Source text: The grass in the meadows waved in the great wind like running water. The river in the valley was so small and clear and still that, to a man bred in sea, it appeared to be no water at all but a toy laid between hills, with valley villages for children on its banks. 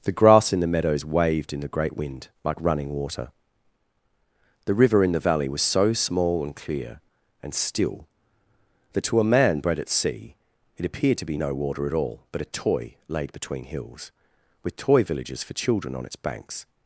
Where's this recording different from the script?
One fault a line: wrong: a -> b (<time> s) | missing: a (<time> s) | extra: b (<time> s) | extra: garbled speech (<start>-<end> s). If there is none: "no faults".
wrong: in -> at (9.8 s)
wrong: valley -> toy (14.8 s)